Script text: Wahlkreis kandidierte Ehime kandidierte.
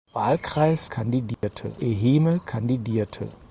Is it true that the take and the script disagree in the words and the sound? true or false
true